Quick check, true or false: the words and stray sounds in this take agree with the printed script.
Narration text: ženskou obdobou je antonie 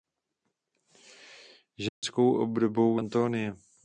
false